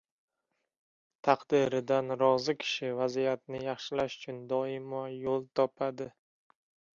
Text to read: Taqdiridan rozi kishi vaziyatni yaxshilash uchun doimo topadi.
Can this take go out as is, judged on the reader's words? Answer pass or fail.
fail